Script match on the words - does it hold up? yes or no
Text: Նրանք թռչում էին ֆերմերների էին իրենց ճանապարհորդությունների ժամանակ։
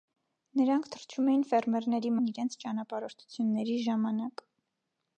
yes